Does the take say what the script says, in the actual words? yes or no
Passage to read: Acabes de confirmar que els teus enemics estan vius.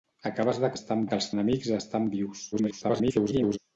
no